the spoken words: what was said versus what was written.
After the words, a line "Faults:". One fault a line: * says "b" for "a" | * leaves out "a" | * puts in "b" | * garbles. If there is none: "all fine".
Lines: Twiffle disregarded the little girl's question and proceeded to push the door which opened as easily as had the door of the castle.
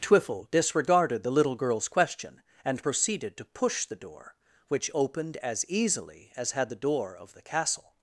Twiffle disregarded the little girl's question and proceeded to push the door which opened as easily as had the door of the castle.
Faults:
all fine